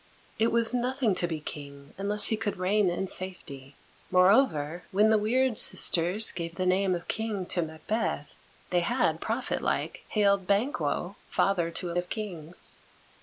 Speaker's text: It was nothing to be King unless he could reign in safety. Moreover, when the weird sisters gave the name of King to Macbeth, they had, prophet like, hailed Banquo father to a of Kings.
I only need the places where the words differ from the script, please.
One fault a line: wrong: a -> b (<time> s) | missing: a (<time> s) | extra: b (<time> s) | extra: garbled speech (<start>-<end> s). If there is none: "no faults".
no faults